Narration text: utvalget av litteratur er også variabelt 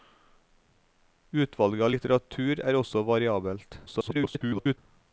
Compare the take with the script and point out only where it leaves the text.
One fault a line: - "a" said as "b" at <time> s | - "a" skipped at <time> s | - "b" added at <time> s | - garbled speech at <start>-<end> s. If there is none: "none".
- garbled speech at 3.9-4.8 s